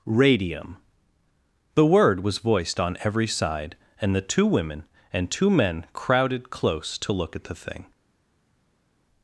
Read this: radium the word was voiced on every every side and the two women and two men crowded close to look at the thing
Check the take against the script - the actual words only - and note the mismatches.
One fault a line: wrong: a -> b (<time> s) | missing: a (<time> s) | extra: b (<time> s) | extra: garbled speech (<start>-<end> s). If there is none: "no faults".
missing: every (3.3 s)